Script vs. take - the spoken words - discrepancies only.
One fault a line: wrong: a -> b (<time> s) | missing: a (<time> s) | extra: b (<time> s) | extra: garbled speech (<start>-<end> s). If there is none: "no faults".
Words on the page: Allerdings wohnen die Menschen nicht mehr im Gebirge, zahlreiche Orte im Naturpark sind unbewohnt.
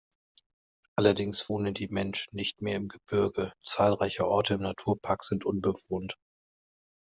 no faults